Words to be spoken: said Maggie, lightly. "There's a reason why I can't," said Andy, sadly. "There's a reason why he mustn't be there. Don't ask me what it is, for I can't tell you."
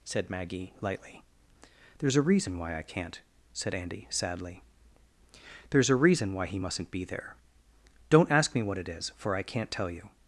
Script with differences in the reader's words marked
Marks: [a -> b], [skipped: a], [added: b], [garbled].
said Maggie, lightly. "There's a reason why I can't," said Andy, sadly. "There's a reason why he mustn't be there. Don't ask me what it is, for I can't tell you."